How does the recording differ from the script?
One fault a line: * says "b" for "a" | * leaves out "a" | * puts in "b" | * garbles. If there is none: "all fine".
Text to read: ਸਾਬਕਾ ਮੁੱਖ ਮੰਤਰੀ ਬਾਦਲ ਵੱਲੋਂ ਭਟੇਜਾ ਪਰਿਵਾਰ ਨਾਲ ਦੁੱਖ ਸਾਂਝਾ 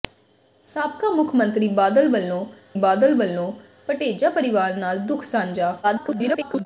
* puts in "ਬਾਦਲ ਵੱਲੋਂ"
* garbles